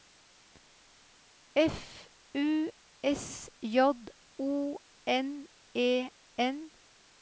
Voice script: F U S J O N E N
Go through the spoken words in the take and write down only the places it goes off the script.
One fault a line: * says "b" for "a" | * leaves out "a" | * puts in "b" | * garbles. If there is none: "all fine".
all fine